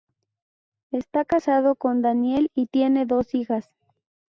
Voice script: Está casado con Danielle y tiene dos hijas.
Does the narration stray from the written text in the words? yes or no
no